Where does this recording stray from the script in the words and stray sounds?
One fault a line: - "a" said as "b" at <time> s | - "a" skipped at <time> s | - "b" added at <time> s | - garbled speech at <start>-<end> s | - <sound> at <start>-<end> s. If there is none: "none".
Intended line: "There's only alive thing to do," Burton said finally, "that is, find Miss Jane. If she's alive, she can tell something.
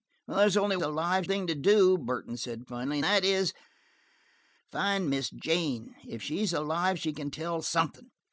none